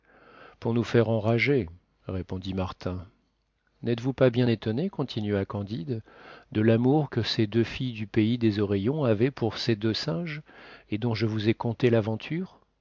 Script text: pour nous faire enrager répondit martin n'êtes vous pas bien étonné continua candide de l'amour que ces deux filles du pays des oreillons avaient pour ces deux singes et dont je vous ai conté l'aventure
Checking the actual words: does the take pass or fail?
pass